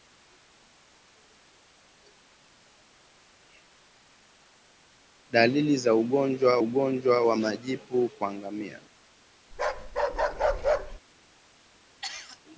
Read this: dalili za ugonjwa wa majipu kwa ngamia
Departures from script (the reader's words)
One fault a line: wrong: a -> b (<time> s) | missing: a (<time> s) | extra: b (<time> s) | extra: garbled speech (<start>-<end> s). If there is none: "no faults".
extra: ugonjwa (6.6 s)